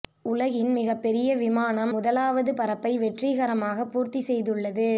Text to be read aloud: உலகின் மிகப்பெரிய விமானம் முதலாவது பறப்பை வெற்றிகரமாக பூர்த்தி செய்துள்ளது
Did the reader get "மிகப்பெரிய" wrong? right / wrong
right